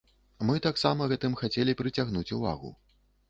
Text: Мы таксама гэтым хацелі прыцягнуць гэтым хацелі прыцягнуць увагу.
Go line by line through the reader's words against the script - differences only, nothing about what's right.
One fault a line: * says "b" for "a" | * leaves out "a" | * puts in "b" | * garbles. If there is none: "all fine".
* leaves out "гэтым хацелі прыцягнуць"